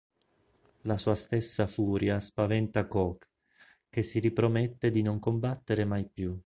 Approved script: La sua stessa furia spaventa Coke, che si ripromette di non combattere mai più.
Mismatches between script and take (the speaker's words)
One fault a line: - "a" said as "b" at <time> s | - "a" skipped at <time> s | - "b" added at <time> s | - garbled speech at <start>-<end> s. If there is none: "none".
none